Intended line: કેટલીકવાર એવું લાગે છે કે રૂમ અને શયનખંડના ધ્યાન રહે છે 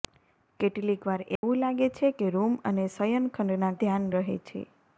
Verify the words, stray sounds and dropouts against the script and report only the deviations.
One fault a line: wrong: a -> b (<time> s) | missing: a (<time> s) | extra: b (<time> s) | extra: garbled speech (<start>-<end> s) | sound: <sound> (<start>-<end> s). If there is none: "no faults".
sound: dropout (1.4-1.4 s)